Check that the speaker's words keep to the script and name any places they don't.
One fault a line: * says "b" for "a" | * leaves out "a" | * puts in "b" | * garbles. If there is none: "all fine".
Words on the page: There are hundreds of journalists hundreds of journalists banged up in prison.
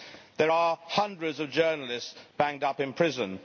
* leaves out "hundreds of journalists"